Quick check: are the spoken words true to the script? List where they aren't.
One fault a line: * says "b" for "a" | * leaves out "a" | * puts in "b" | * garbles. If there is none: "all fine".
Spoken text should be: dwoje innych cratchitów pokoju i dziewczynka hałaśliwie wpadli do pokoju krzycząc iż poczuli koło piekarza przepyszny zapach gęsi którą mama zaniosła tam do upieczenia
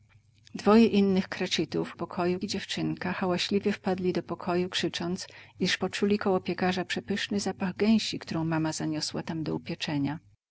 all fine